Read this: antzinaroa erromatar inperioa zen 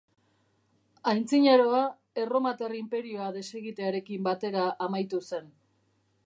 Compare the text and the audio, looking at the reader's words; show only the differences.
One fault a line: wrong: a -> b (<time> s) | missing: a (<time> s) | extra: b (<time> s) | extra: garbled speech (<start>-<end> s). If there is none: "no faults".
extra: desegitearekin batera amaitu (3.4 s)